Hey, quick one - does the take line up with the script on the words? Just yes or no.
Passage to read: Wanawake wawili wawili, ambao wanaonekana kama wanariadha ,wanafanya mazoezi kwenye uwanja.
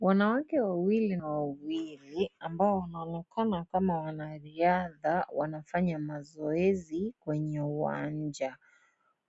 yes